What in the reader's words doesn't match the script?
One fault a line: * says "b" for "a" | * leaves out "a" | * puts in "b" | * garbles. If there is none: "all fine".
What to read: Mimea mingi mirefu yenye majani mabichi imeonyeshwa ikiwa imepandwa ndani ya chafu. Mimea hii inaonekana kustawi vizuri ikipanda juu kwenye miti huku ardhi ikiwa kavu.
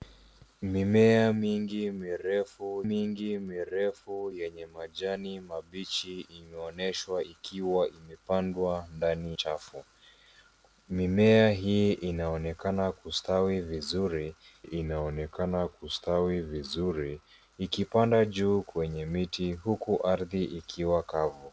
* puts in "mingi mirefu"
* leaves out "ya"
* puts in "inaonekana kustawi vizuri"